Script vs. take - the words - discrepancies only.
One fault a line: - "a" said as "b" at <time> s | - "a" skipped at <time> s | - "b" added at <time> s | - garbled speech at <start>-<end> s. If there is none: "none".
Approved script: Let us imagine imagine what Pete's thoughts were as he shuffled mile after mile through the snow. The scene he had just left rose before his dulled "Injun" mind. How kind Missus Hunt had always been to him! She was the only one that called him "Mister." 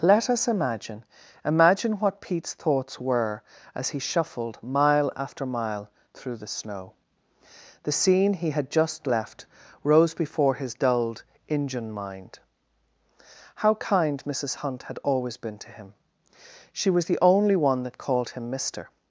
none